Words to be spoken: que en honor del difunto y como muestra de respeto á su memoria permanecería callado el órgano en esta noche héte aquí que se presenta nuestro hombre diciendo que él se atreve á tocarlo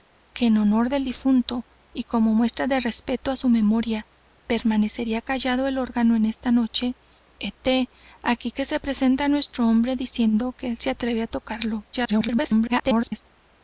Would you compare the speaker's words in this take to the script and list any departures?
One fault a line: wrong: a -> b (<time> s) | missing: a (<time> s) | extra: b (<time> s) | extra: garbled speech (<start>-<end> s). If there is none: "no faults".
extra: garbled speech (11.9-13.3 s)